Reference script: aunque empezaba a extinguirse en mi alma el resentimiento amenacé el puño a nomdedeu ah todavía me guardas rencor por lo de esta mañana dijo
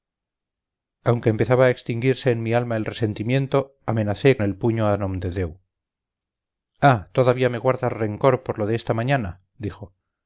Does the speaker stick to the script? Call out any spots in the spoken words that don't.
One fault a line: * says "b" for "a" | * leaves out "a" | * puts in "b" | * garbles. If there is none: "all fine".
all fine